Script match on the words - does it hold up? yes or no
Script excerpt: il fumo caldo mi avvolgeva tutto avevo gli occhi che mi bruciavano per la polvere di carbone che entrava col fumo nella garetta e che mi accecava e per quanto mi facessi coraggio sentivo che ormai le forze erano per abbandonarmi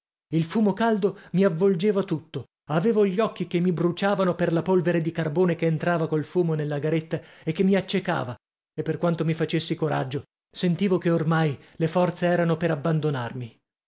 yes